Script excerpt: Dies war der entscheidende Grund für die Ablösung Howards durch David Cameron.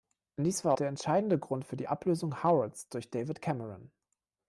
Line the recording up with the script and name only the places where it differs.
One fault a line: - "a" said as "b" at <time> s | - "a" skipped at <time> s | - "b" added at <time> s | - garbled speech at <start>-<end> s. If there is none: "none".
none